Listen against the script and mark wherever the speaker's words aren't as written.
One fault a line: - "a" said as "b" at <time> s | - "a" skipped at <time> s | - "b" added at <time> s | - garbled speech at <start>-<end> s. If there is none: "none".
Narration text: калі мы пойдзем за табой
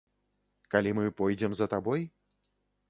none